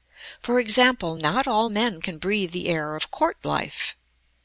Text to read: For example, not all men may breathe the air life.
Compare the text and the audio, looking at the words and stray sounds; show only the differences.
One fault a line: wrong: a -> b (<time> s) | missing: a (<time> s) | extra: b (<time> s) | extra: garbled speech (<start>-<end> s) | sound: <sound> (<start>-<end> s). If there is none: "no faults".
wrong: may -> can (2.0 s)
extra: of court (2.9 s)